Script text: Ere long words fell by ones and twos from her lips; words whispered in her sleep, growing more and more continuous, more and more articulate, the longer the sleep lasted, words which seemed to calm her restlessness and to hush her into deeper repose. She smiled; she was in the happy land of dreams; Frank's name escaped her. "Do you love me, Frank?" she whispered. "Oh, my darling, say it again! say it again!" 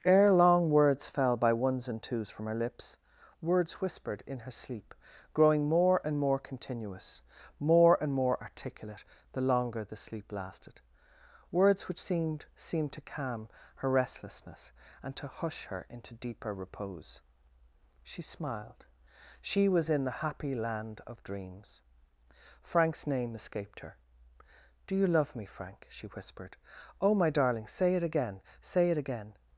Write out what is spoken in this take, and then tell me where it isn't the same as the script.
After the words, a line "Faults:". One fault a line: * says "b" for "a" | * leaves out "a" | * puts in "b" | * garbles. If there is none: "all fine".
Ere long words fell by ones and twos from her lips; words whispered in her sleep, growing more and more continuous, more and more articulate, the longer the sleep lasted, words which seemed seemed to calm her restlessness and to hush her into deeper repose. She smiled; she was in the happy land of dreams; Frank's name escaped her. "Do you love me, Frank?" she whispered. "Oh, my darling, say it again! say it again!"
Faults:
* puts in "seemed"